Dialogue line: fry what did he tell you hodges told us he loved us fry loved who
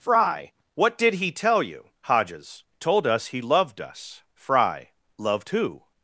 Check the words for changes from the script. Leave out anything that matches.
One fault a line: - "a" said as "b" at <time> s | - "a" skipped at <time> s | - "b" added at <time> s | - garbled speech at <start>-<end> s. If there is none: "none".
none